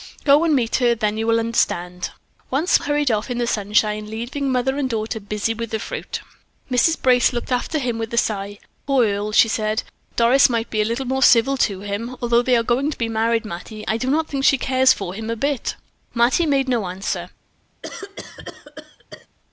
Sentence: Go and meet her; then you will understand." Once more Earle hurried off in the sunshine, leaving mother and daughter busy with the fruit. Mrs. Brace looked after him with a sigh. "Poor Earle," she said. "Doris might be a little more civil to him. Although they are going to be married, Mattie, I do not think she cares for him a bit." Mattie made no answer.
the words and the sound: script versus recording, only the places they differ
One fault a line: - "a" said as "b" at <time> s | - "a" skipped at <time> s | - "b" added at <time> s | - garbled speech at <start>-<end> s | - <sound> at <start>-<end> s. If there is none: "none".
- "more Earle" skipped at 2.8 s
- cough at 17.8-19.3 s